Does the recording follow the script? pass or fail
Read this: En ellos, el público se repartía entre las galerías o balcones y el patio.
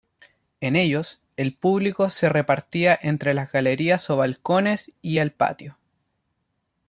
pass